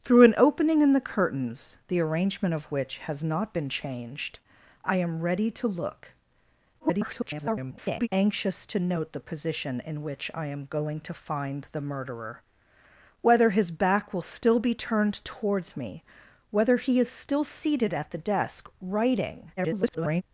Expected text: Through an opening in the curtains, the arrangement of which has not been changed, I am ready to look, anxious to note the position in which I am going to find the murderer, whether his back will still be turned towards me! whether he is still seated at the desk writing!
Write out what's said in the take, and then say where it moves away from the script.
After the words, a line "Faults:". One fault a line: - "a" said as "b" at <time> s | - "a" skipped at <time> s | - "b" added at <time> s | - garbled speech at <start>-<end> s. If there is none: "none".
Through an opening in the curtains, the arrangement of which has not been changed, I am ready to look, [garbled] anxious to note the position in which I am going to find the murderer, whether his back will still be turned towards me! whether he is still seated at the desk writing! [garbled]
Faults:
- garbled speech at 6.8-8.1 s
- garbled speech at 19.6-20.2 s